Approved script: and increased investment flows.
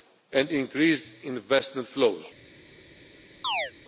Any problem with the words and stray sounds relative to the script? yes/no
yes